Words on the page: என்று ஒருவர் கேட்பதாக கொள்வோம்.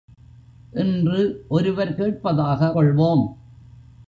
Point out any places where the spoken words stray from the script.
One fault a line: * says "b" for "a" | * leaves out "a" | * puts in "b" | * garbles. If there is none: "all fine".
all fine